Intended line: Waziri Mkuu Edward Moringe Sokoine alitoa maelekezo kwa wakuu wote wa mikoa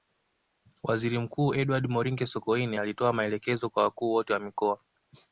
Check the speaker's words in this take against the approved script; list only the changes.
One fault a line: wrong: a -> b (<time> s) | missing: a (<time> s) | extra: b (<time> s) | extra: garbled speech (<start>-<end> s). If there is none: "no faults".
no faults